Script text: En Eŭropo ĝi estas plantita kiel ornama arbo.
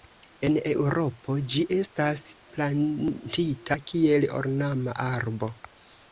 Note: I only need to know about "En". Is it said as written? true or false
true